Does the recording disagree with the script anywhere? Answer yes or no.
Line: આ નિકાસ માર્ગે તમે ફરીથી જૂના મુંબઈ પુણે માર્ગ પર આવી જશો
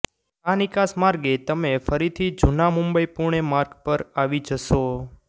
no